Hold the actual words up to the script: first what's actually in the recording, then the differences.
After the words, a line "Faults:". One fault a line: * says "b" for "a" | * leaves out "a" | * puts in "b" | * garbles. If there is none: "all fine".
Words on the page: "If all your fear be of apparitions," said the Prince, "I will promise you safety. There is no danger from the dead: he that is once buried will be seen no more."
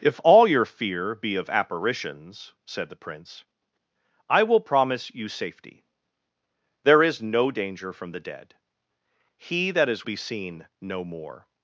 "If all your fear be of apparitions," said the Prince, "I will promise you safety. There is no danger from the dead: he that is be seen no more."
Faults:
* leaves out "once buried will"